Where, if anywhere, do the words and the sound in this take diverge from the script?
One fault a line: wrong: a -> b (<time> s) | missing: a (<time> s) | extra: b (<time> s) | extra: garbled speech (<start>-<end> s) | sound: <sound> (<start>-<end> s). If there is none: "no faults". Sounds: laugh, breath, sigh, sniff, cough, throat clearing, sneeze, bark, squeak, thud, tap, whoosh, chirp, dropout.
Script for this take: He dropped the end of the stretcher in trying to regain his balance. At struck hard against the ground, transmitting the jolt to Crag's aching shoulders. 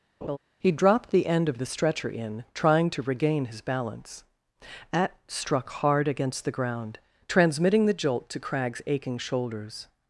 sound: laugh (0.2-0.4 s)